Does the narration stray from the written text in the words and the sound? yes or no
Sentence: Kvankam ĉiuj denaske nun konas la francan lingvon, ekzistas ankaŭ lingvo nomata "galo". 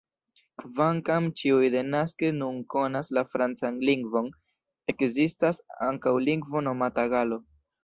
no